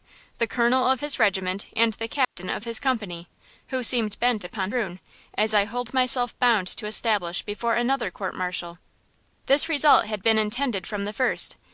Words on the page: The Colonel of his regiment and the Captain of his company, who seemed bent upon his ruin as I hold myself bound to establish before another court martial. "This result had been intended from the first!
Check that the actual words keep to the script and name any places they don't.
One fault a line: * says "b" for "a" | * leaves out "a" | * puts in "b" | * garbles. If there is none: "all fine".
* leaves out "his"